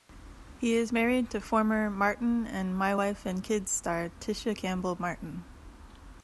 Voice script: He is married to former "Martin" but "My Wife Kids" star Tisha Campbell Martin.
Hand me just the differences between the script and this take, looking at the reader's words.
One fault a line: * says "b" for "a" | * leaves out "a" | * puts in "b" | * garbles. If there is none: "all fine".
* says "and" for "but"
* puts in "and"